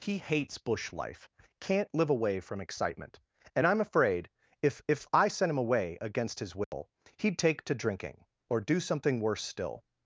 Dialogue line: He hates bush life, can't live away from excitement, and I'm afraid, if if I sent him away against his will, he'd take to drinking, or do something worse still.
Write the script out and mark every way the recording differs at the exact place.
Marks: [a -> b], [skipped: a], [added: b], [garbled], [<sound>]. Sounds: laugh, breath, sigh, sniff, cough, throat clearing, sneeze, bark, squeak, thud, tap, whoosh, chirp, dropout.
He hates bush life, can't live away from excitement, and I'm afraid, if if I sent him away against his will, [dropout] he'd take to drinking, or do something worse still.